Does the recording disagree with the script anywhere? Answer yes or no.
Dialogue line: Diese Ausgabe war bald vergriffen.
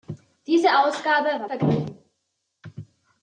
yes